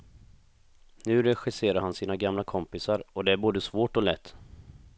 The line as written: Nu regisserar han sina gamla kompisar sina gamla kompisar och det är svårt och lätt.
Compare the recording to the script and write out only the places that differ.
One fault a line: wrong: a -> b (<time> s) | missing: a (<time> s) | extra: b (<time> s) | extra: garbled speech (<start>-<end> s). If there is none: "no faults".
missing: sina gamla kompisar (3.0 s)
extra: både (3.4 s)